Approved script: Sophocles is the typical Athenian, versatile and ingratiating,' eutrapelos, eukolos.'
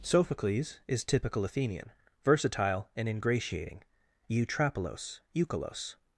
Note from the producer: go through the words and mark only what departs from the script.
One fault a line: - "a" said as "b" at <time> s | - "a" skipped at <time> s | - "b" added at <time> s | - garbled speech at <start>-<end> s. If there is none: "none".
- "the" skipped at 1.0 s